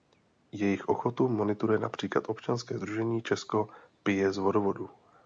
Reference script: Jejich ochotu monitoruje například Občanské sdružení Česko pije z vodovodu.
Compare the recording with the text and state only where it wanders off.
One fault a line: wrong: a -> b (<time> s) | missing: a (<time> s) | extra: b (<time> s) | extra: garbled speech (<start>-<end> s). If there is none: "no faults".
no faults